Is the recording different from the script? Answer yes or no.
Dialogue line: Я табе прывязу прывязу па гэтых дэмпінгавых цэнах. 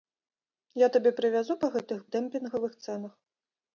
yes